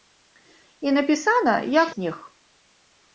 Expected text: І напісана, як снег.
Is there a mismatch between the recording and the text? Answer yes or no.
no